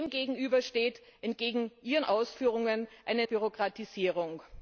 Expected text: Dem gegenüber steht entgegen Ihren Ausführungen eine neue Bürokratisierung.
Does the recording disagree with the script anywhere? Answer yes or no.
yes